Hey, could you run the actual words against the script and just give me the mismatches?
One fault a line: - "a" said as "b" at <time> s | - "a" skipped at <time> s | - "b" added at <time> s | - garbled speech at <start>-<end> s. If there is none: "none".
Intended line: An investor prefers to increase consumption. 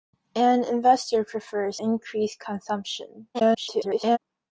- "to" skipped at 1.8 s
- garbled speech at 3.3-4.2 s